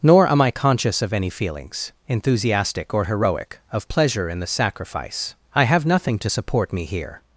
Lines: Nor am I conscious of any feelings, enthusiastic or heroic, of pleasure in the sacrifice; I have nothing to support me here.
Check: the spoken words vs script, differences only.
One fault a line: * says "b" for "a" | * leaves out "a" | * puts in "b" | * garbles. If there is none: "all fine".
all fine